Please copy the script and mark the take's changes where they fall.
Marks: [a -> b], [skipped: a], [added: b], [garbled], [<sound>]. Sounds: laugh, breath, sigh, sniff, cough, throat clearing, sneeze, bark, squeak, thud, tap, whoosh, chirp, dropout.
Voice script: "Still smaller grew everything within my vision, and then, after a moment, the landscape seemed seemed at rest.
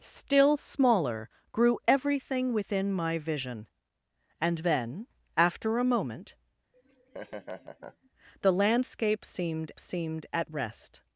"Still smaller grew everything within my vision, and then, after a moment, [laugh] the landscape seemed seemed at rest.